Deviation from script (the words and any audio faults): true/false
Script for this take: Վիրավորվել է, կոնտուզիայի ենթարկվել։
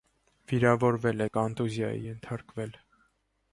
false